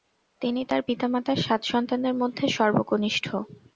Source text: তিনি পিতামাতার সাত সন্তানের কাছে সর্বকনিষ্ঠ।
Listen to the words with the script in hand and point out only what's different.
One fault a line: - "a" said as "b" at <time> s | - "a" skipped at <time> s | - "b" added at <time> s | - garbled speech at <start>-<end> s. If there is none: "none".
- "তার" added at 0.7 s
- "কাছে" said as "মধ্যে" at 2.1 s